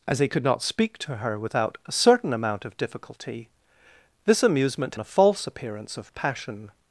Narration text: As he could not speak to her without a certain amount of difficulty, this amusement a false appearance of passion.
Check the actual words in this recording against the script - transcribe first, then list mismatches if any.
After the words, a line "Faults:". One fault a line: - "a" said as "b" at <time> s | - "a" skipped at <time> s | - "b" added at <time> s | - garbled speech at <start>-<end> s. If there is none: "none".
As he could not speak to her without a certain amount of difficulty, this amusement a false appearance of passion.
Faults:
none